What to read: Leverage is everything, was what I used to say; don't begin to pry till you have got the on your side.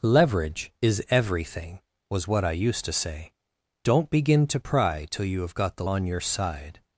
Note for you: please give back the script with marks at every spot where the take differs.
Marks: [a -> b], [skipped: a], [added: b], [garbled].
Leverage is everything, was what I used to say; don't begin to pry till you have got the on your side.